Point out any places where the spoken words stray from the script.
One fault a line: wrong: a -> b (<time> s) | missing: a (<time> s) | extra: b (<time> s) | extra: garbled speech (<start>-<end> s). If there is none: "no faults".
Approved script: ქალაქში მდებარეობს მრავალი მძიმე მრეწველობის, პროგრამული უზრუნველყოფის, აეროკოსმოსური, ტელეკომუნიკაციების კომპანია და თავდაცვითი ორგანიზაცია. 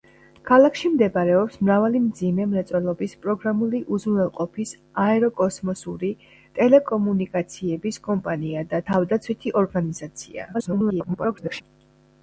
extra: garbled speech (10.5-11.6 s)